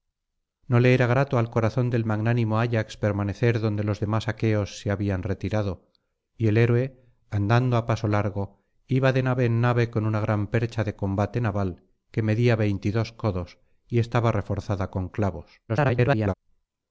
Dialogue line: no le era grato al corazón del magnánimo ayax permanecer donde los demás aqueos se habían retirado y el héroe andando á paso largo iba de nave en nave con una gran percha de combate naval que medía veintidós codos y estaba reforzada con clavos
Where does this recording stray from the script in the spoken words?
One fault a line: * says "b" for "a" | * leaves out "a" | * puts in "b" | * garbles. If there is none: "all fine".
* garbles